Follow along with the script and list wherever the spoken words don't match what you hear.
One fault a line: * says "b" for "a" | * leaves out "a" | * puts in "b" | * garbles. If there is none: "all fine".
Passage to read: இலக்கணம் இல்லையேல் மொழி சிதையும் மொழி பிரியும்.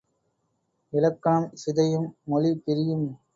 * leaves out "இல்லையேல் மொழி"